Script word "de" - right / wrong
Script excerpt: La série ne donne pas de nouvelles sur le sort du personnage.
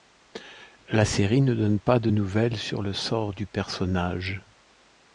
right